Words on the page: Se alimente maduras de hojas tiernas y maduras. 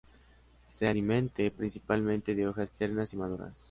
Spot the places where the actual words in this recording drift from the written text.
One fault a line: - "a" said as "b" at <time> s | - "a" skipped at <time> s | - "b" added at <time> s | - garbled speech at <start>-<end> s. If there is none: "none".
- "maduras" said as "principalmente" at 1.5 s